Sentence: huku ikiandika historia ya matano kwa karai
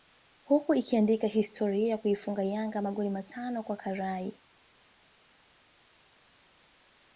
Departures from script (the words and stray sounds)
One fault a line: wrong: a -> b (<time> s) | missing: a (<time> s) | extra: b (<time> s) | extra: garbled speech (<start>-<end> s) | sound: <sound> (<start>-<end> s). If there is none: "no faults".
extra: kuifunga Yanga magoli (2.0 s)